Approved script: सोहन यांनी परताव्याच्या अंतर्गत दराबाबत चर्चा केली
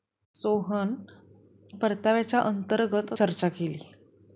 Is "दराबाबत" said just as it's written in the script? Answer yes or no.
no